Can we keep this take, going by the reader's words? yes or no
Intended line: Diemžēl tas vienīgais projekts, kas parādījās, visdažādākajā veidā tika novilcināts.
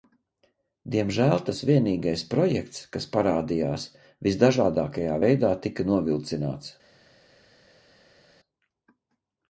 yes